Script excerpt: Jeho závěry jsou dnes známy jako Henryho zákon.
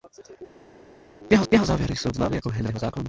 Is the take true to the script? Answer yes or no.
no